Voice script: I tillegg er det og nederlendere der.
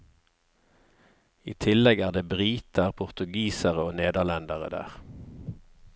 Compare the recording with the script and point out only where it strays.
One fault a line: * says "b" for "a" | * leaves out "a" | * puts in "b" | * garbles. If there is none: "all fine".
* puts in "briter portugisere"